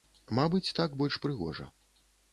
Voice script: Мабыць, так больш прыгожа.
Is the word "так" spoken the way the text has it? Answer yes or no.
yes